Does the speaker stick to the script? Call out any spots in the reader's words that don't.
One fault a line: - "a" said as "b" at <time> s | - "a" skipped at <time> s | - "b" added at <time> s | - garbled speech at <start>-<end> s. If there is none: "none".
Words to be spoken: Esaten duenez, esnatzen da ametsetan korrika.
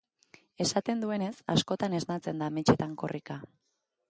- "askotan" added at 1.5 s